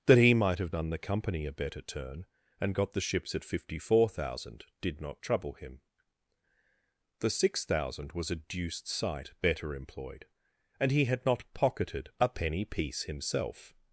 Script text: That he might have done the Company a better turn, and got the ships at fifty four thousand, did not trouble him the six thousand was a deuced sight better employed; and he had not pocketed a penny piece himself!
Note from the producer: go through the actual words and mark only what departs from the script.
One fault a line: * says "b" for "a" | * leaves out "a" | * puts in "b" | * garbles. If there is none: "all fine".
all fine